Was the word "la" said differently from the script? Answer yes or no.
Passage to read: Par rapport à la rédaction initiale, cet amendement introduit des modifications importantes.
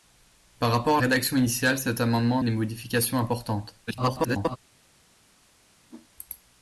yes